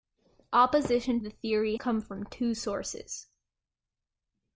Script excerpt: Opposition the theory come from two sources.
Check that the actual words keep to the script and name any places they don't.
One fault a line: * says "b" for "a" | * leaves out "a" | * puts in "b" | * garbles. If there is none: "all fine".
all fine